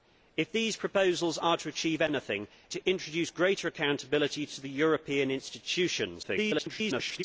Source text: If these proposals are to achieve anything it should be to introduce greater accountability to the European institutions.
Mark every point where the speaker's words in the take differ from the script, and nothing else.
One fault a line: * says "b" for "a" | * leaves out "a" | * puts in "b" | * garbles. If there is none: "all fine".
* leaves out "it should be"
* garbles